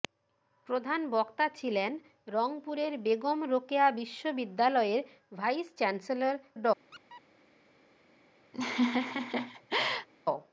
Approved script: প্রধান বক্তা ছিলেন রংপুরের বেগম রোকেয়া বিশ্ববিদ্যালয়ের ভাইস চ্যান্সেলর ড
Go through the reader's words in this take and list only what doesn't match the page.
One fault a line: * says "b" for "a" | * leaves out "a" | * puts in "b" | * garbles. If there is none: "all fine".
all fine